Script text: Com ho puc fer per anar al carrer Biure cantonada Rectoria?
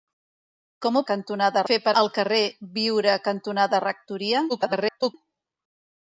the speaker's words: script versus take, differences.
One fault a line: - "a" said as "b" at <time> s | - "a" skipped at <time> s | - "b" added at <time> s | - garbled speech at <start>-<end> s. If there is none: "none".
- "puc" said as "cantonada" at 1.1 s
- "anar" skipped at 1.9 s
- garbled speech at 4.5-5.1 s